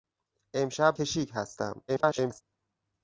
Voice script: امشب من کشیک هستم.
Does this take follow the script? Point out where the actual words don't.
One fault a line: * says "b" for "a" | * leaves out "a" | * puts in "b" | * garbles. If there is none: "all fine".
* leaves out "من"
* garbles